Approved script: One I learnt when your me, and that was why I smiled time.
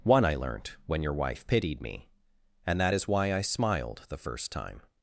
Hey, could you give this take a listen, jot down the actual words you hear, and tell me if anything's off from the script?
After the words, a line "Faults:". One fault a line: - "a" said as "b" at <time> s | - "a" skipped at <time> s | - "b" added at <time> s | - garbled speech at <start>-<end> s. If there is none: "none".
One I learnt when your wife pitied me, and that is why I smiled the first time.
Faults:
- "wife pitied" added at 1.1 s
- "was" said as "is" at 2.9 s
- "the first" added at 4.1 s